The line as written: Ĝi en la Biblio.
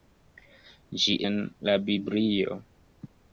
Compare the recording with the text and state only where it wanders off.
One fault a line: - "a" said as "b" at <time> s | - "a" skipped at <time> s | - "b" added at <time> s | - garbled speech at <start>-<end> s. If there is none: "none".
none